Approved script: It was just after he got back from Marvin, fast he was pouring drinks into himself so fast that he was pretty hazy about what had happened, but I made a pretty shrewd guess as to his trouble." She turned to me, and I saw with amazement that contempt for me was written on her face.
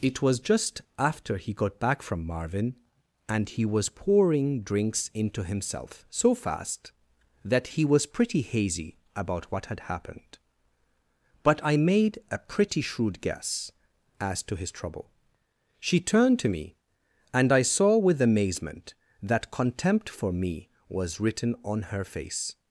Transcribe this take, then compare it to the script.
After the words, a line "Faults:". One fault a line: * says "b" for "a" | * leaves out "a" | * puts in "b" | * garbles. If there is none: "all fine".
It was just after he got back from Marvin, and he was pouring drinks into himself so fast that he was pretty hazy about what had happened, but I made a pretty shrewd guess as to his trouble." She turned to me, and I saw with amazement that contempt for me was written on her face.
Faults:
* says "and" for "fast"